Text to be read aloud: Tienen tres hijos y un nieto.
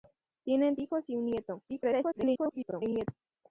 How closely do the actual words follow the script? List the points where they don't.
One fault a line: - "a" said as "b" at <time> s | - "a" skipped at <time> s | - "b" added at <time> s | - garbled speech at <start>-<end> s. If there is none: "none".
- "tres" skipped at 0.8 s
- garbled speech at 1.7-3.1 s